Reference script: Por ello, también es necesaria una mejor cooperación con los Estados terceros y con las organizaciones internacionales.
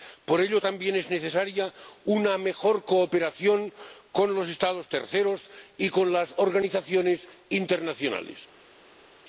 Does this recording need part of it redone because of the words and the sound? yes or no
no